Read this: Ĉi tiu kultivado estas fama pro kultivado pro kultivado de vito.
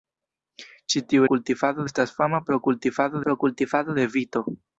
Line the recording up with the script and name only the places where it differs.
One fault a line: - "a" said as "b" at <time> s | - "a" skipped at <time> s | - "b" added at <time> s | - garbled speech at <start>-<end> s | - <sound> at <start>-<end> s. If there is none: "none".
none